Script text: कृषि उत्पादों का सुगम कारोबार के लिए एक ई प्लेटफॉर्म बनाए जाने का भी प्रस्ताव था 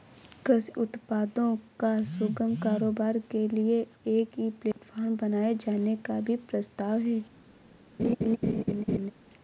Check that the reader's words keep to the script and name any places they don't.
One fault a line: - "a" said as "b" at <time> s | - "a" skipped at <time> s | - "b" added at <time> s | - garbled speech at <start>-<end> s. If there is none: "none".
- "था" said as "है" at 7.0 s